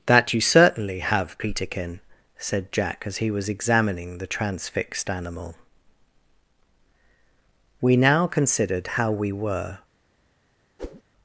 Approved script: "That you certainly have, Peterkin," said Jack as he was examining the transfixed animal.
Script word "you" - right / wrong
right